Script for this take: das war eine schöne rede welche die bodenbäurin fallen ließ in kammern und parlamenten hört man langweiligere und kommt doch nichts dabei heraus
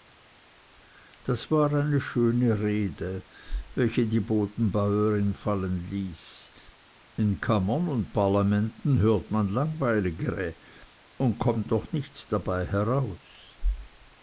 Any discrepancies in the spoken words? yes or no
no